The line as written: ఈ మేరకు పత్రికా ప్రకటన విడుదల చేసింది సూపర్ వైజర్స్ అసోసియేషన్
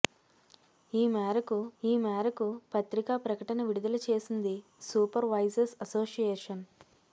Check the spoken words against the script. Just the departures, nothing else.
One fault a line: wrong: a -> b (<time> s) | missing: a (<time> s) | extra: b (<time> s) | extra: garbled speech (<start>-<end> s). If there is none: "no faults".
extra: ఈ మేరకు (1.8 s)